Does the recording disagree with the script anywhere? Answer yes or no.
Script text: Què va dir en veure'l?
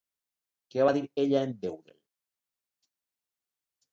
yes